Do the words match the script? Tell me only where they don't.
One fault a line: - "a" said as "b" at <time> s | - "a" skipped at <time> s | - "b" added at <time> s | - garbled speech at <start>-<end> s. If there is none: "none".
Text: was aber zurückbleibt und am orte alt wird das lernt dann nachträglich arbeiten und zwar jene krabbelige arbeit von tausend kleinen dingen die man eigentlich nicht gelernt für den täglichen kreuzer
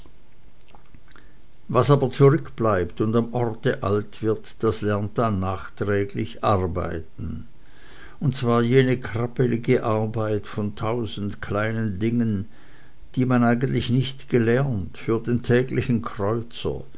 none